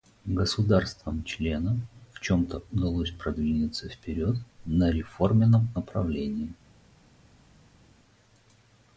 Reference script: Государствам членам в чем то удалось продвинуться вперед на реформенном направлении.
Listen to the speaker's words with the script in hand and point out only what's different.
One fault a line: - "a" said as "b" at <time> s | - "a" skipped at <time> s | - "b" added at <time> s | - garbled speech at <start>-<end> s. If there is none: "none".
none